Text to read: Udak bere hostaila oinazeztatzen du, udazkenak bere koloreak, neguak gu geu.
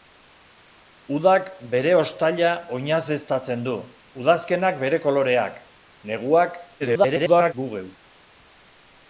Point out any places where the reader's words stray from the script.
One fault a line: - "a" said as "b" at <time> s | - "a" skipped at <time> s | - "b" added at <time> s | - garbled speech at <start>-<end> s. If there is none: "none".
- garbled speech at 6.8-7.5 s